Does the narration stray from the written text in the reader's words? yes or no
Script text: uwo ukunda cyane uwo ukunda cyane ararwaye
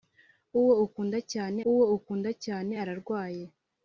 no